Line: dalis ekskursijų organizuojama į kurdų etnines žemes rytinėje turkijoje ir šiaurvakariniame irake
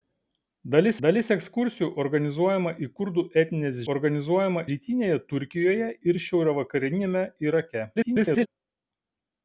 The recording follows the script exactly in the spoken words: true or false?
false